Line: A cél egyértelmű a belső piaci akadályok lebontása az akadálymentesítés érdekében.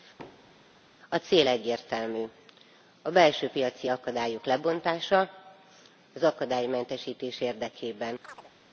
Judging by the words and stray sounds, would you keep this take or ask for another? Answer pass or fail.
fail